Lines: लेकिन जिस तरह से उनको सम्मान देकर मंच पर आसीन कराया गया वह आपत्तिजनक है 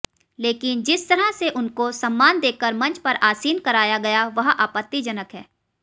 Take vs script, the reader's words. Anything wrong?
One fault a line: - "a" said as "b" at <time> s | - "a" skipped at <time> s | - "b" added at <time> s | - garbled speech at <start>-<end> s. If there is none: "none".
none